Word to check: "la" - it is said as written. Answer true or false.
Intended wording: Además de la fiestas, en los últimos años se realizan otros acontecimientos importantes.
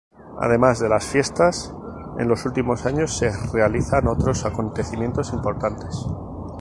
false